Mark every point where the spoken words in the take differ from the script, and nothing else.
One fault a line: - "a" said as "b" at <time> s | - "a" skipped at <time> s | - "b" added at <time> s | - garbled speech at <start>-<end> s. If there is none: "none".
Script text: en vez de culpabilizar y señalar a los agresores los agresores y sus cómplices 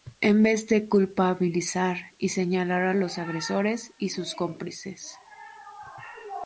- "los agresores" skipped at 3.9 s